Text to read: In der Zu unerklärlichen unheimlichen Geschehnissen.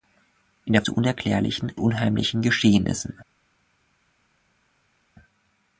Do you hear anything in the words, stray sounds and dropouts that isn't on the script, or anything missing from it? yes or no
no